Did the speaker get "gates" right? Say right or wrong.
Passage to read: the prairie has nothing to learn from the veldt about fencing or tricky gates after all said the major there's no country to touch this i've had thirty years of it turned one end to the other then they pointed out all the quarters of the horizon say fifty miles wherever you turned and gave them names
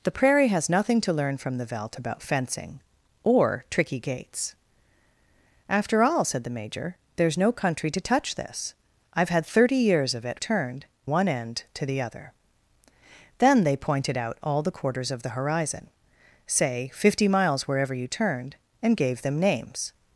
right